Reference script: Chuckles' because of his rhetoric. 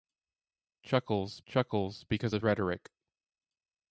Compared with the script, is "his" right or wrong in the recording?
wrong